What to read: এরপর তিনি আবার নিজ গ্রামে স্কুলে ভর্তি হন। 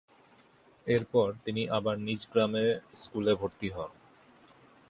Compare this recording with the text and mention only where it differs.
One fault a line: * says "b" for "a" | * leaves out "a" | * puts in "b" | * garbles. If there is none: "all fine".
all fine